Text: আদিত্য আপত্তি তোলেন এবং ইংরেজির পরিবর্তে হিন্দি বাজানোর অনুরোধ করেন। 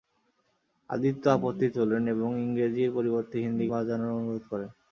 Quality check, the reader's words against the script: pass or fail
pass